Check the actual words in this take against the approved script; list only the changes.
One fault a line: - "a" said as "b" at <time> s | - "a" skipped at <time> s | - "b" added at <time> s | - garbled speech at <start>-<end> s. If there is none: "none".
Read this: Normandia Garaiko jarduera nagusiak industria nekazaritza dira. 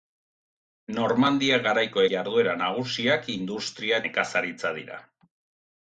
none